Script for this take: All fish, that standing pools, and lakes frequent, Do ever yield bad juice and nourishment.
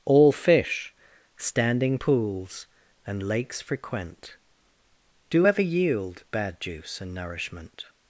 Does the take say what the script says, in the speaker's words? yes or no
no